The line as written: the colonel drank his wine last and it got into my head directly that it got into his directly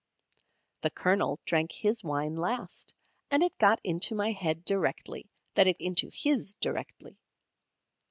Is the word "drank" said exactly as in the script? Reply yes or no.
yes